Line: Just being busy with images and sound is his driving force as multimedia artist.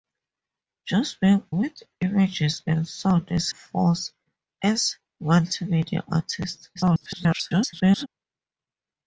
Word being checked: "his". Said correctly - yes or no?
no